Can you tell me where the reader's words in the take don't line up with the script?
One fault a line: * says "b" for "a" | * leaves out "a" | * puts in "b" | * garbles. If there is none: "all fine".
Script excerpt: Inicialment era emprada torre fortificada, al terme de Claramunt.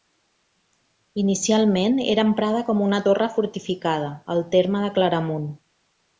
* puts in "com una"